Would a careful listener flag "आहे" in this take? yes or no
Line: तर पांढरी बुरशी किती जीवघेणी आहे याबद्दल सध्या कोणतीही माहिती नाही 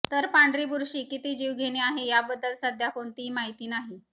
no